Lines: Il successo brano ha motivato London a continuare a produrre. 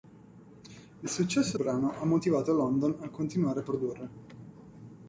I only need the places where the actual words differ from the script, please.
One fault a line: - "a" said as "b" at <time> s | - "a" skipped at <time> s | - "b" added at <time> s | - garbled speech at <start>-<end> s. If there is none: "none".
none